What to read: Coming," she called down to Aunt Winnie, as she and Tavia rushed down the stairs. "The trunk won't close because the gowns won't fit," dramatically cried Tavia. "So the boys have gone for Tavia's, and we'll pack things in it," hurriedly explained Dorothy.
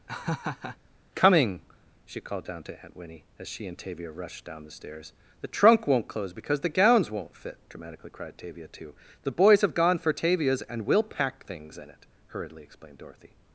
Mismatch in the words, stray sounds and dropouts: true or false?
true